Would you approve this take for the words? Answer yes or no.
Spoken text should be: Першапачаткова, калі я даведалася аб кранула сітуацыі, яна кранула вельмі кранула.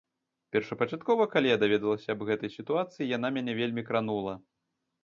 no